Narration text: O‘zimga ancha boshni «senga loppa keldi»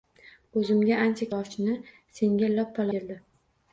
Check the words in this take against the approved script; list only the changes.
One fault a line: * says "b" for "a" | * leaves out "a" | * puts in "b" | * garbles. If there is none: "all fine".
all fine